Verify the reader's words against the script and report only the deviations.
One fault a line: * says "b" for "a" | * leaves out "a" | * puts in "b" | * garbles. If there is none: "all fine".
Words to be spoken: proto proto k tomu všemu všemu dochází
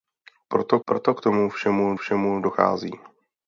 all fine